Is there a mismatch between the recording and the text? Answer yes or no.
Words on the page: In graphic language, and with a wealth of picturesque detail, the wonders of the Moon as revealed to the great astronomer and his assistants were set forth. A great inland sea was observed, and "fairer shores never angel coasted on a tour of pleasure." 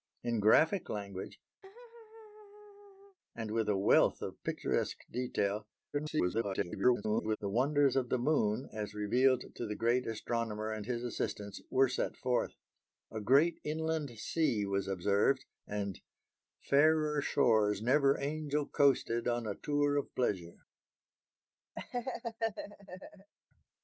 yes